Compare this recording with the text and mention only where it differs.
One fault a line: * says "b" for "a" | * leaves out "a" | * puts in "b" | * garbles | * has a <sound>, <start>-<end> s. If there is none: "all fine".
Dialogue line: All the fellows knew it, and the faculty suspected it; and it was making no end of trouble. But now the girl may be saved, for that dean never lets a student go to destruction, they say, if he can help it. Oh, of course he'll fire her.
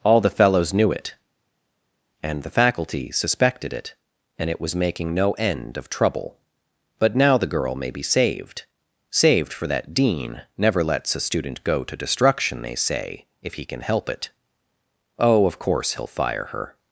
* puts in "saved"